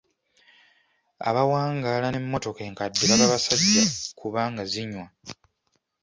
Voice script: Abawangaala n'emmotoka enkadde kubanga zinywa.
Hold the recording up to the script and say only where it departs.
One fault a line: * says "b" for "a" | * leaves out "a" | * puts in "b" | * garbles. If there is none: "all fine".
* puts in "baba basajja"